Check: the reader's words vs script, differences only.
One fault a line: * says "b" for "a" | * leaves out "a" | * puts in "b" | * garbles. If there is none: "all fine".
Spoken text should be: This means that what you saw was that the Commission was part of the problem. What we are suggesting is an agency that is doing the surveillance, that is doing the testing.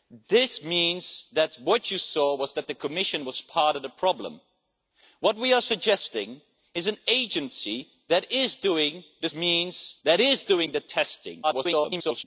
* says "means" for "surveillance"
* garbles